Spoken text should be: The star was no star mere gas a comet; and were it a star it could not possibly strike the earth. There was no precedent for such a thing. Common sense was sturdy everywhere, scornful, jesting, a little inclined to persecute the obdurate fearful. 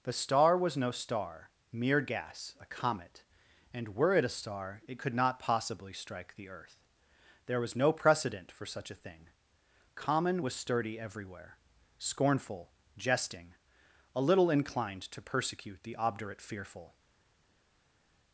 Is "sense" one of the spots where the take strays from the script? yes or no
yes